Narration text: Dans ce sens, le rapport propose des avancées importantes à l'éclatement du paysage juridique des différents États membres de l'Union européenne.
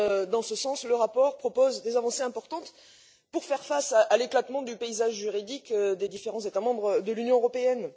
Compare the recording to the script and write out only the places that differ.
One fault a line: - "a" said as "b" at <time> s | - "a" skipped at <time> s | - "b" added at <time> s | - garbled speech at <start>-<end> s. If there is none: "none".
- "pour faire face" added at 3.3 s